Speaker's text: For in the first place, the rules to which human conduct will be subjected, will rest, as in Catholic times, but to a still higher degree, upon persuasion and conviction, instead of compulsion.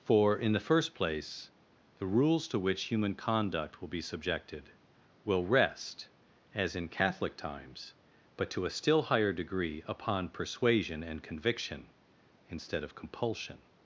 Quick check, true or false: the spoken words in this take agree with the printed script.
true